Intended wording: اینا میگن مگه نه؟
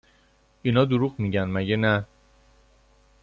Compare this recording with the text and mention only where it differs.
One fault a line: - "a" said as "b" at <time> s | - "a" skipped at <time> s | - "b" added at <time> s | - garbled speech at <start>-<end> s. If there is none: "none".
- "دروغ" added at 0.8 s